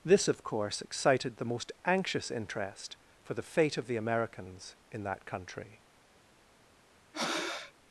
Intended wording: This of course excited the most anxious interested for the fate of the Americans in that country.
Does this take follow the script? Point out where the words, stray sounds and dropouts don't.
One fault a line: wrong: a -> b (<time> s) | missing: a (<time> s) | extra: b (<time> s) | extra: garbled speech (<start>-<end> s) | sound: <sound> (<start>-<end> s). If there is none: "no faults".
wrong: interested -> interest (2.3 s)
sound: breath (7.1-7.7 s)